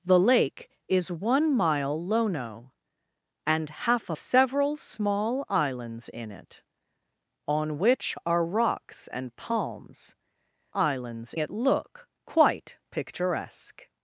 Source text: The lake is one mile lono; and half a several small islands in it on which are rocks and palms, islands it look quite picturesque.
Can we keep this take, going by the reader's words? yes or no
yes